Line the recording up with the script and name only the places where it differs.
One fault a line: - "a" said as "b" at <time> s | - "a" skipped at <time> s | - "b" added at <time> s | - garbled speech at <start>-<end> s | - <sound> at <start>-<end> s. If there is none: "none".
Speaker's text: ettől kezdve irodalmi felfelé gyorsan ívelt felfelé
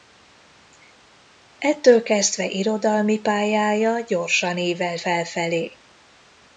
- "felfelé" said as "pályája" at 3.2 s